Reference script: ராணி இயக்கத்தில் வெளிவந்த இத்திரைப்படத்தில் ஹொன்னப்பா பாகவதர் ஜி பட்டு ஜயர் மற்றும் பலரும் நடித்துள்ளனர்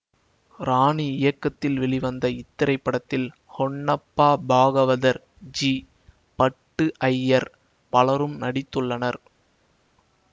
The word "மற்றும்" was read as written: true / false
false